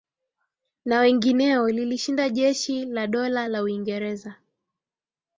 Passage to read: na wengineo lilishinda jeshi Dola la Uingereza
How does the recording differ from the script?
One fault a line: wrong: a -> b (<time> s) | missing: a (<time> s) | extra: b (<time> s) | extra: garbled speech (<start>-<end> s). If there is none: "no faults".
extra: la (2.9 s)